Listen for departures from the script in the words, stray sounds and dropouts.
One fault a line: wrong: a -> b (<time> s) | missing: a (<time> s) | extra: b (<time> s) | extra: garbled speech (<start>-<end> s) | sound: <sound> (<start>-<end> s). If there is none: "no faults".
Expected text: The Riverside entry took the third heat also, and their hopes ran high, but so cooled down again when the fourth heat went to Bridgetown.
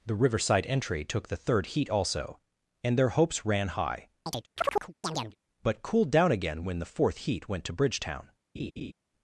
sound: chirp (4.3-5.4 s)
missing: so (5.8 s)
sound: laugh (8.5-8.9 s)